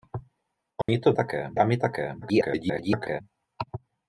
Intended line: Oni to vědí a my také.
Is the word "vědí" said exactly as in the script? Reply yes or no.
no